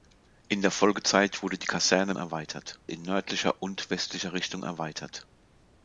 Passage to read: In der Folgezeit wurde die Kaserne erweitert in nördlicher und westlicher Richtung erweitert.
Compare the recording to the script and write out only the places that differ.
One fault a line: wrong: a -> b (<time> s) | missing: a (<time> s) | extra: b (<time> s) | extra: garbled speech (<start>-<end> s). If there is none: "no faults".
no faults